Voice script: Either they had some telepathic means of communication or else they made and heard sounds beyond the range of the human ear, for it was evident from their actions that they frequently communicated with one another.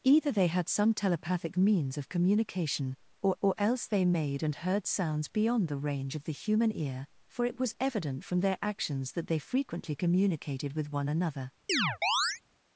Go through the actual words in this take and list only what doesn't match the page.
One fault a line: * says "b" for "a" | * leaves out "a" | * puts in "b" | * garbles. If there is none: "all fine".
* puts in "or"